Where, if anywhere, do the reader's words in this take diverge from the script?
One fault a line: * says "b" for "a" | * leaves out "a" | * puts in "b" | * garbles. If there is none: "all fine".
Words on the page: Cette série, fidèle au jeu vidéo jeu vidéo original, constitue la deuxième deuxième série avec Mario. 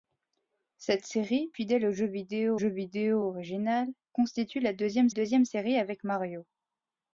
all fine